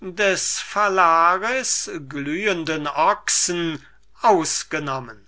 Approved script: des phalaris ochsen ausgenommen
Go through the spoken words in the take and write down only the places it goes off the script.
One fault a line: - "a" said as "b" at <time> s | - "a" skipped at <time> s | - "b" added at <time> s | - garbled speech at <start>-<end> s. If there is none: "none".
- "glühenden" added at 2.1 s